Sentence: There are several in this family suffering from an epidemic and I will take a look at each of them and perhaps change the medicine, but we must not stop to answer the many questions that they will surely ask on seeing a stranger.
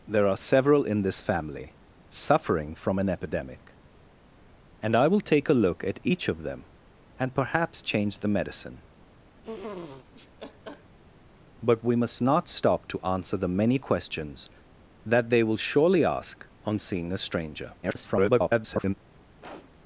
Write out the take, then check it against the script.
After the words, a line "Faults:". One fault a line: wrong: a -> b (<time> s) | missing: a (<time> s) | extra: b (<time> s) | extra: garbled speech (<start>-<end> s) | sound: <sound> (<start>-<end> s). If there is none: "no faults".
There are several in this family suffering from an epidemic and I will take a look at each of them and perhaps change the medicine, but we must not stop to answer the many questions that they will surely ask on seeing a stranger. [garbled]
Faults:
sound: laugh (9.4-11.0 s)
extra: garbled speech (17.8-18.9 s)
sound: sniff (19.4-19.7 s)